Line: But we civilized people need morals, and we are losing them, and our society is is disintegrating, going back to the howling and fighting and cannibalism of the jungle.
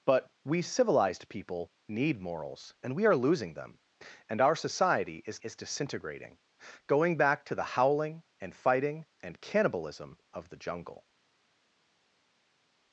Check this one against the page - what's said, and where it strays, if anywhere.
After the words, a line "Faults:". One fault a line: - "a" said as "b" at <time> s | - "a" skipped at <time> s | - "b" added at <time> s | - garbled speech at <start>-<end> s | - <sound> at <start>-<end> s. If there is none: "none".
But we civilized people need morals, and we are losing them, and our society is is disintegrating, going back to the howling and fighting and cannibalism of the jungle.
Faults:
none